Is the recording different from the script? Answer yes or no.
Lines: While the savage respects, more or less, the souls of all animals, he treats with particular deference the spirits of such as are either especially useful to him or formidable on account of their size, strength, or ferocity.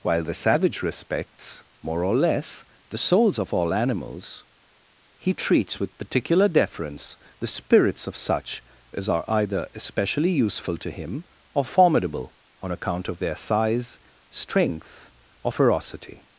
no